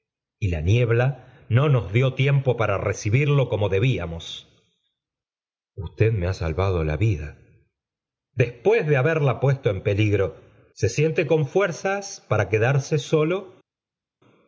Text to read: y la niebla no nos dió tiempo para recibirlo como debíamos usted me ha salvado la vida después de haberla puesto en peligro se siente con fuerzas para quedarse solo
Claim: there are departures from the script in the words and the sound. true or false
false